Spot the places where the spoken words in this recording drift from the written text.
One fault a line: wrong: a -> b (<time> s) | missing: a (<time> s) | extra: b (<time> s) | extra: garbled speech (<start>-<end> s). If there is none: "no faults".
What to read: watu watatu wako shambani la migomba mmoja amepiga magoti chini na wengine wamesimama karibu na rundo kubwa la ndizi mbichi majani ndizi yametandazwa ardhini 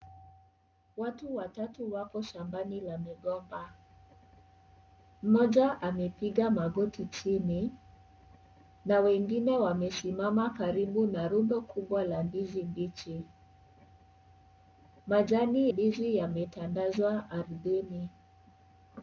no faults